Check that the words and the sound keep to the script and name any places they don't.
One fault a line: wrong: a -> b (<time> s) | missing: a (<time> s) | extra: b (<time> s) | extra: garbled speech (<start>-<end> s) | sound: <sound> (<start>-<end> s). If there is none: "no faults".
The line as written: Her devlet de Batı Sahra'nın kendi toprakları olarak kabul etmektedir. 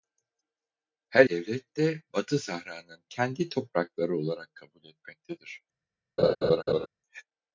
sound: laugh (6.2-6.9 s)